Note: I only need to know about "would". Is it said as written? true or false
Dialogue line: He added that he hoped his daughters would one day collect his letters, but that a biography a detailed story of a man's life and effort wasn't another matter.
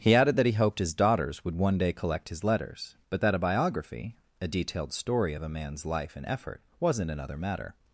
true